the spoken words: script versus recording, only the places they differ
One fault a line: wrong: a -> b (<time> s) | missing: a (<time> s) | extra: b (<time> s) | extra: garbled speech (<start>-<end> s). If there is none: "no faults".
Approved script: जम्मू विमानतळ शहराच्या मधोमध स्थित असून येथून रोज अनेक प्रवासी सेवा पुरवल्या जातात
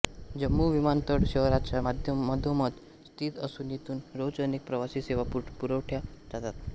no faults